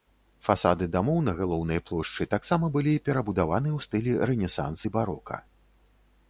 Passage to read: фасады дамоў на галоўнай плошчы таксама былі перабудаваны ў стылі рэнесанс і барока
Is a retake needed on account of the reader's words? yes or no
no